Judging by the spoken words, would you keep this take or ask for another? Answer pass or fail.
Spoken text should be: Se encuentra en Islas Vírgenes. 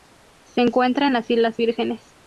fail